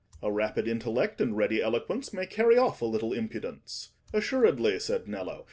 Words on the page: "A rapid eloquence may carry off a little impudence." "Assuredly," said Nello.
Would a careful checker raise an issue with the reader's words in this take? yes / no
yes